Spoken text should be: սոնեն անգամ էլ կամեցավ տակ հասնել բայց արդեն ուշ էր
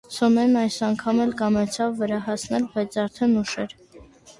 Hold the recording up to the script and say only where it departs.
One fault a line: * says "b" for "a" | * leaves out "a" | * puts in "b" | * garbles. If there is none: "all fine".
* puts in "այս"
* says "վրա" for "տակ"